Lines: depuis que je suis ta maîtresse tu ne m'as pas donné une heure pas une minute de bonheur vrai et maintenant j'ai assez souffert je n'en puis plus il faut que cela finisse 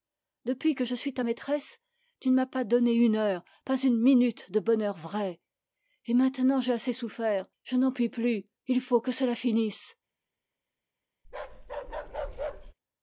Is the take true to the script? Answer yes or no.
yes